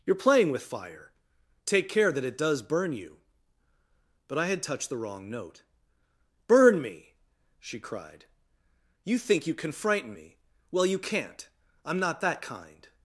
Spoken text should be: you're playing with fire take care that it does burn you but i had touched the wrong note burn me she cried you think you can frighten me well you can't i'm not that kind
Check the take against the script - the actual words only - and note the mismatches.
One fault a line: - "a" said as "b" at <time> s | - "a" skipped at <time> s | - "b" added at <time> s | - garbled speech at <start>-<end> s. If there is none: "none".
none